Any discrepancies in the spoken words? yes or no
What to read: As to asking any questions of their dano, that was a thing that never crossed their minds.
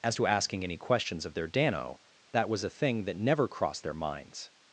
no